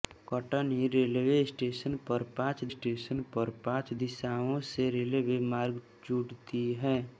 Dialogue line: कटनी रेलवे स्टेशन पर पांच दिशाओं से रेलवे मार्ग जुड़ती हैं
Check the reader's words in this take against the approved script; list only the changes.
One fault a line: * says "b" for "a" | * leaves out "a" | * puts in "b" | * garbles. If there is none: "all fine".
* puts in "स्टेशन पर पांच"